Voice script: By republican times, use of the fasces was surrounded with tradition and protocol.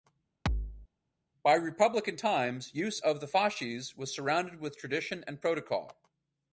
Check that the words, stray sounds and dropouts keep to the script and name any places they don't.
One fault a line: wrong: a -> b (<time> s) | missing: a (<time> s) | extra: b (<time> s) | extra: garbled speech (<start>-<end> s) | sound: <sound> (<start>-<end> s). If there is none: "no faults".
sound: thud (0.5-0.9 s)